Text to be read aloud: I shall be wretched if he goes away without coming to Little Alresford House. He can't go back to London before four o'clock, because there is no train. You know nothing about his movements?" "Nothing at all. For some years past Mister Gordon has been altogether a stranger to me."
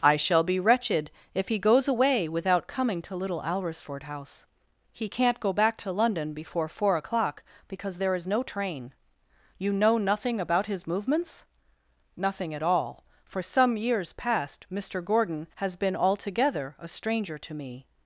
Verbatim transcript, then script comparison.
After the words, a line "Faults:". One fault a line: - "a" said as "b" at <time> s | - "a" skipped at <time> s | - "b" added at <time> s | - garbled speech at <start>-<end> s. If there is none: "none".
I shall be wretched if he goes away without coming to Little Alresford House. He can't go back to London before four o'clock, because there is no train. You know nothing about his movements?" "Nothing at all. For some years past Mister Gordon has been altogether a stranger to me."
Faults:
none